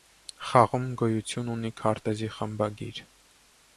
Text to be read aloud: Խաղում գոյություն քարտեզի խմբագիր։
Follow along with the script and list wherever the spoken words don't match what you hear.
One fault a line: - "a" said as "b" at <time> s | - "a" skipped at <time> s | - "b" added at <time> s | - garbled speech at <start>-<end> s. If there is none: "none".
- "ունի" added at 1.6 s